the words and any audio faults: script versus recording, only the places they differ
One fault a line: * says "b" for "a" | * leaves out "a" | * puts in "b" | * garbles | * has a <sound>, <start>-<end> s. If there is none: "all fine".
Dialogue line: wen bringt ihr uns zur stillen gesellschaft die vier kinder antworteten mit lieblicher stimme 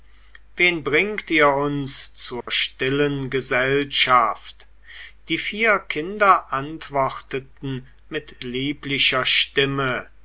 * has a dropout, 2.4-2.5 s